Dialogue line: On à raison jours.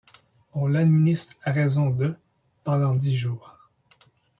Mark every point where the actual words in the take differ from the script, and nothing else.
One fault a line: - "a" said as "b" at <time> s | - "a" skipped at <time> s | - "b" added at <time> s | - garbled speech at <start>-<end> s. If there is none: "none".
- "l'administre" added at 0.7 s
- "de pendant dix" added at 1.9 s